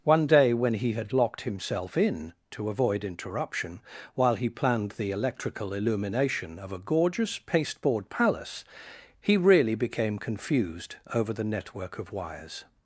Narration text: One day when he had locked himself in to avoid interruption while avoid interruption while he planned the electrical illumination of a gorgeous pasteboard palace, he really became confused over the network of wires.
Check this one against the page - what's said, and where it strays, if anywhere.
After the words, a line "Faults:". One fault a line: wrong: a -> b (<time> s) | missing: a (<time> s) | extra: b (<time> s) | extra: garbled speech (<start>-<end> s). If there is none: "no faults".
One day when he had locked himself in to avoid interruption while he planned the electrical illumination of a gorgeous pasteboard palace, he really became confused over the network of wires.
Faults:
missing: avoid interruption while (4.3 s)